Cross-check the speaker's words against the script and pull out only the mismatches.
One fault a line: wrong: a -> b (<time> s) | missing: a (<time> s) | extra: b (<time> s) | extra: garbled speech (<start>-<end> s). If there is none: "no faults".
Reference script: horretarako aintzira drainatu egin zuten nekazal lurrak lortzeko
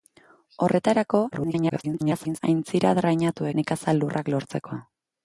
extra: garbled speech (1.3-2.4 s)
missing: egin zuten (3.5 s)